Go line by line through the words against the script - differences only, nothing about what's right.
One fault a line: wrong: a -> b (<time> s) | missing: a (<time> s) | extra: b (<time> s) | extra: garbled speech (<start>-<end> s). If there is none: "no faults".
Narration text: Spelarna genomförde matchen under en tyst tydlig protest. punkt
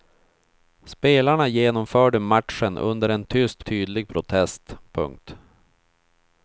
no faults